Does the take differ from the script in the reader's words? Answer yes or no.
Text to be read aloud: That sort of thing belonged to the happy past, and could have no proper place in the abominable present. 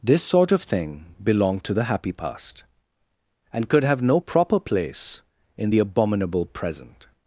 yes